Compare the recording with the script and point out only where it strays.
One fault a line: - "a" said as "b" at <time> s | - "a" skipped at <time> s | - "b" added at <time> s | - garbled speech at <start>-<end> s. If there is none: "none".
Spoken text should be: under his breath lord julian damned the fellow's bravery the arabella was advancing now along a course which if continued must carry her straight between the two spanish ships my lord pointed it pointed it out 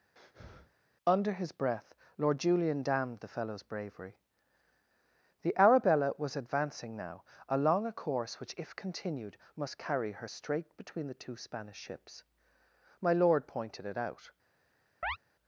- "pointed it" skipped at 14.0 s